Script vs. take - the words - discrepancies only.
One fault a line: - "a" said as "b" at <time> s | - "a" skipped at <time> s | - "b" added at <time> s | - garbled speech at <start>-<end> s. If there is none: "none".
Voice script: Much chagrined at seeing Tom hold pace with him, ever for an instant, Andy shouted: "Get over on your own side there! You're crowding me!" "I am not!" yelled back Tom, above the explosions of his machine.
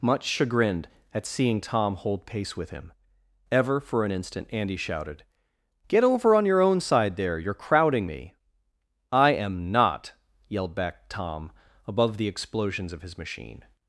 none